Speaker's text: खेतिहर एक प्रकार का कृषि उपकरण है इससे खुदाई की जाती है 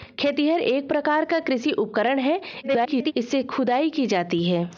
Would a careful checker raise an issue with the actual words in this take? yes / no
yes